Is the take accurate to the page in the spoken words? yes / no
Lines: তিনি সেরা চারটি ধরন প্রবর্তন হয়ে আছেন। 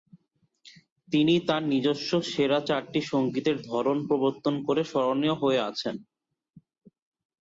no